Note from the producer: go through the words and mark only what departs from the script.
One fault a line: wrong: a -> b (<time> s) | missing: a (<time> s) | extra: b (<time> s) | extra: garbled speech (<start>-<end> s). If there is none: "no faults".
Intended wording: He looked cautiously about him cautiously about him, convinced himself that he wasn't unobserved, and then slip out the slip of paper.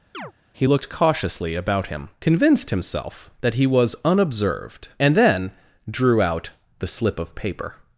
missing: cautiously about him (2.1 s)
wrong: wasn't -> was (3.7 s)
wrong: slip -> drew (5.9 s)